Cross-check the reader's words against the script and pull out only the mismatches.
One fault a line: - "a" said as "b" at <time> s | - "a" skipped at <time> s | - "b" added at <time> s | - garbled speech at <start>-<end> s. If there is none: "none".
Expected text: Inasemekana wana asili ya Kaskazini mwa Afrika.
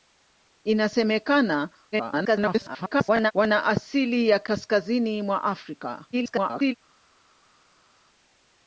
- garbled speech at 1.9-3.3 s
- garbled speech at 6.1-6.7 s